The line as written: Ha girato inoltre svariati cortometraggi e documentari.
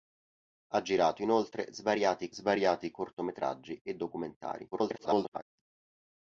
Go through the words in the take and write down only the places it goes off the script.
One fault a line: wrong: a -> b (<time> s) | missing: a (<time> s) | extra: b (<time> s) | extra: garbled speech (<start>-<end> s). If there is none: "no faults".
extra: svariati (2.3 s)
extra: garbled speech (4.7-5.4 s)